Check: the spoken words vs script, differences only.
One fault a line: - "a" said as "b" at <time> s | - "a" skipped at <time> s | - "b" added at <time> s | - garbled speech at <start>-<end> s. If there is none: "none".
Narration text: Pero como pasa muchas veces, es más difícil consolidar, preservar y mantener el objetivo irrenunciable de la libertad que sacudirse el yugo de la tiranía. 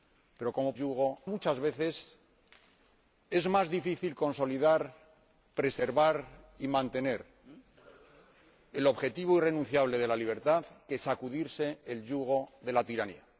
- "pasa" said as "yugo" at 0.7 s